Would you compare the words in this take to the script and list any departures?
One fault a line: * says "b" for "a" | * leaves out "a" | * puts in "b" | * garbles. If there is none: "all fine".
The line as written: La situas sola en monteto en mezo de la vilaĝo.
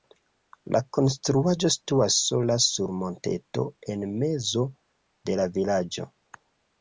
* puts in "konstruaĵo"
* says "sur" for "en"